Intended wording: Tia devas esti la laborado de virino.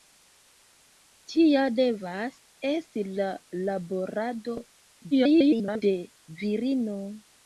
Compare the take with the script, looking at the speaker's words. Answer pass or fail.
fail